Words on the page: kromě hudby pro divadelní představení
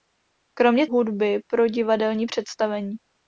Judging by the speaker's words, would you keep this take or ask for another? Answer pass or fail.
pass